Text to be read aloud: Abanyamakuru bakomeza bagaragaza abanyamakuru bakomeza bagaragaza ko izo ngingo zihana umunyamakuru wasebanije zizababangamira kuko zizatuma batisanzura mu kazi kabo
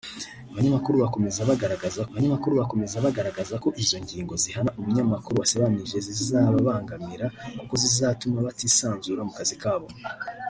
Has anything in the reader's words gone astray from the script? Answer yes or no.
no